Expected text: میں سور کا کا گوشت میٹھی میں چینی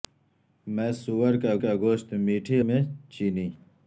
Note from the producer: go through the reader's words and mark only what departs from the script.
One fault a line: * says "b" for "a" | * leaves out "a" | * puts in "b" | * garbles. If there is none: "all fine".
all fine